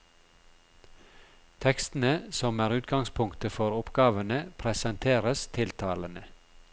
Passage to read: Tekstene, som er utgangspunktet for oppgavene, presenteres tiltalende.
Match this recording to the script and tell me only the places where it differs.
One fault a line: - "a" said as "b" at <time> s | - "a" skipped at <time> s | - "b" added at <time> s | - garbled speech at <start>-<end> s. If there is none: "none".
none